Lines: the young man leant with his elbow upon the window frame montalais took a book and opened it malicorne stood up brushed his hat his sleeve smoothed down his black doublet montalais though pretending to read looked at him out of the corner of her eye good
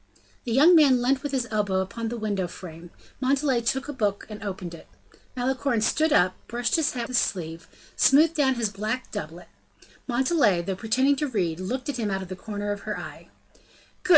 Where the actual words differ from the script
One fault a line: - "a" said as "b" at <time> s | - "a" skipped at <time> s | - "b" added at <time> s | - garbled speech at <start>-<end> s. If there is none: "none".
none